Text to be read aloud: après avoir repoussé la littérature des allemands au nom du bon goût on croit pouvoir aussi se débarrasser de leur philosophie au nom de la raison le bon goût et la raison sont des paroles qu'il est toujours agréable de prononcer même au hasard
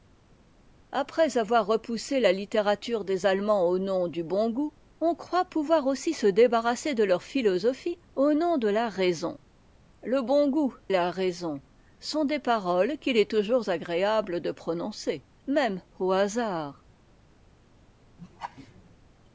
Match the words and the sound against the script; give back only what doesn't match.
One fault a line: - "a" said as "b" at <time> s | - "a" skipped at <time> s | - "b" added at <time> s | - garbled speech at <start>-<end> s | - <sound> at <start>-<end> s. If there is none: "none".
- "et" skipped at 10.7 s
- laugh at 18.2-19.0 s